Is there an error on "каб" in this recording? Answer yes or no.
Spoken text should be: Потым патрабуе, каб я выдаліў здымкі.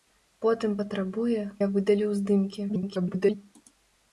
yes